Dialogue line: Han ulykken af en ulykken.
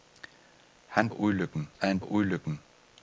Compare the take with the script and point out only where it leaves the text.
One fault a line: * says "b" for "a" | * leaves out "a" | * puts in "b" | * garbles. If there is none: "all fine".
all fine